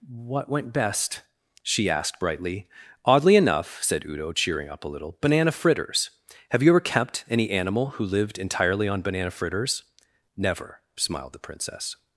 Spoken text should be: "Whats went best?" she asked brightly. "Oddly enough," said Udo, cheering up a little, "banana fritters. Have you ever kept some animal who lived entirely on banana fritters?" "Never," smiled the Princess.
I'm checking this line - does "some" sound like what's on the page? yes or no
no